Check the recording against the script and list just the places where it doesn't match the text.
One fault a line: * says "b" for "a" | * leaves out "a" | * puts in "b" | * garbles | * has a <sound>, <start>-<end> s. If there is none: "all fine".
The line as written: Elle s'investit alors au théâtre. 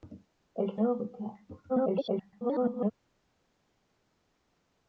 * leaves out "s'investit"
* garbles